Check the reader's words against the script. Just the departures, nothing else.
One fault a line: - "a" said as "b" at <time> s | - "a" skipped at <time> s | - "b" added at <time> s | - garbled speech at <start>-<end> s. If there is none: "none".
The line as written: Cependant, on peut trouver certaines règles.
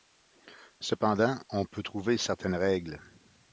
none